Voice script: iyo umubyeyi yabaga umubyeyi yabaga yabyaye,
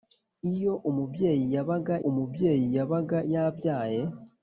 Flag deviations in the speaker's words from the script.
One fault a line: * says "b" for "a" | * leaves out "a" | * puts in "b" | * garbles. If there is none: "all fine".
all fine